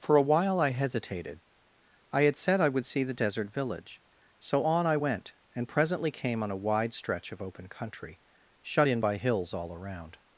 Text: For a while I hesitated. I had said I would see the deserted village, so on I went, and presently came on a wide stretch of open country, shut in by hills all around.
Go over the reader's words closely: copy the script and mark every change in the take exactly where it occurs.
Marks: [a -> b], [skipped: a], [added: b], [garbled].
For a while I hesitated. I had said I would see the [deserted -> desert] village, so on I went, and presently came on a wide stretch of open country, shut in by hills all around.